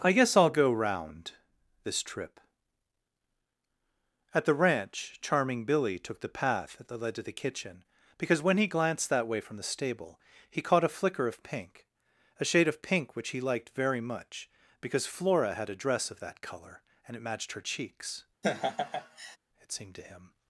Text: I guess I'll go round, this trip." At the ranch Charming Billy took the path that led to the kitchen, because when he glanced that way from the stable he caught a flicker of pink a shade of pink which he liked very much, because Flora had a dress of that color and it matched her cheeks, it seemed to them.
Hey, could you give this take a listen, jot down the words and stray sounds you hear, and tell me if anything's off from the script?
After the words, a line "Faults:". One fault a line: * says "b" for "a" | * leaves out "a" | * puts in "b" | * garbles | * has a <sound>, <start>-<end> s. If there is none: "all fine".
I guess I'll go round, this trip." At the ranch Charming Billy took the path that led to the kitchen, because when he glanced that way from the stable he caught a flicker of pink a shade of pink which he liked very much, because Flora had a dress of that color and it matched her cheeks, it seemed to him.
Faults:
* has a laugh, 18.4-19.4 s
* says "him" for "them"